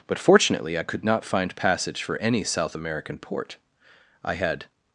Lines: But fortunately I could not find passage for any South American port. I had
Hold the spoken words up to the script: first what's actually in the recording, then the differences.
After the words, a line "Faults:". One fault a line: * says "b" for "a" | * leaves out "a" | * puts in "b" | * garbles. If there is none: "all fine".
But fortunately I could not find passage for any South American port. I had
Faults:
all fine